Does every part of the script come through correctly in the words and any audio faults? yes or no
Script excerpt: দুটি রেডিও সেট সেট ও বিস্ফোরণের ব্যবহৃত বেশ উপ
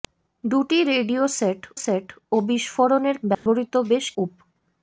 no